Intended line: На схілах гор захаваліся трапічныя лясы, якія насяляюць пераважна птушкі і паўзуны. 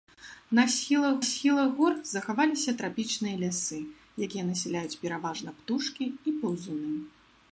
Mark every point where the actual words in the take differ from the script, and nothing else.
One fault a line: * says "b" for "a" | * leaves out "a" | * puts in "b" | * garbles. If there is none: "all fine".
* puts in "схілах"